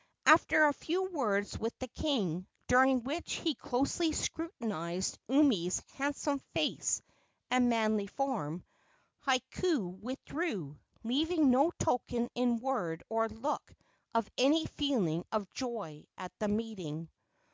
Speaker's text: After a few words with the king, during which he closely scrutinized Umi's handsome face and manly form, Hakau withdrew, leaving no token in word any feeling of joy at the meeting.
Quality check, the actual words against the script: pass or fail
fail